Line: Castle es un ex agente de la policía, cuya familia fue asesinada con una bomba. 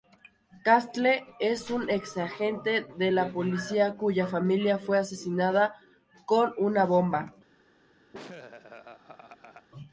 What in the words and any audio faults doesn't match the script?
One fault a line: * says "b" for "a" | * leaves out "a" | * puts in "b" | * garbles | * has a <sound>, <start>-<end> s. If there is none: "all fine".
* has a laugh, 8.1-9.7 s